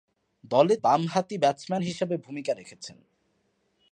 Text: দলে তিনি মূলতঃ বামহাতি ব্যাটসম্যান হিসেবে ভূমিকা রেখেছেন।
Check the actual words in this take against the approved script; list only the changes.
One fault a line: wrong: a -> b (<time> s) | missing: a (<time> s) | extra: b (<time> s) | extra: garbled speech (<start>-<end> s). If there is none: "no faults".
missing: তিনি মূলতঃ (0.8 s)